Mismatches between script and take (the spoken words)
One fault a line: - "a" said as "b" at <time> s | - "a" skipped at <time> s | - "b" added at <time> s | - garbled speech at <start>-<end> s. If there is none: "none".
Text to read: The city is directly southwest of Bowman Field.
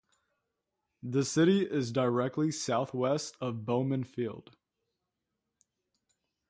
none